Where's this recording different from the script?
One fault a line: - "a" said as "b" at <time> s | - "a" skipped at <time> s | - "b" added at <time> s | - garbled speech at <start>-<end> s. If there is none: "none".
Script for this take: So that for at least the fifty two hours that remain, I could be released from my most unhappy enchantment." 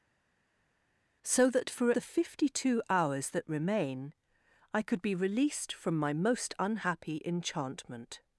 - "at least" skipped at 1.9 s